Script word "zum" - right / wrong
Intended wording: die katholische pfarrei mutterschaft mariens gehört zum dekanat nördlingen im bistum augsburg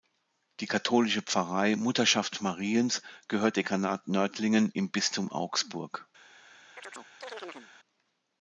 wrong